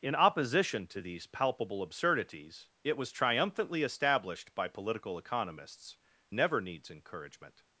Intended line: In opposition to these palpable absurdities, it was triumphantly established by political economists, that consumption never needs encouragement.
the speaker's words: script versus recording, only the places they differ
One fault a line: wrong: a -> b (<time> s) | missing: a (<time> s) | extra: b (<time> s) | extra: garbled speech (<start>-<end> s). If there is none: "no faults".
missing: that consumption (6.0 s)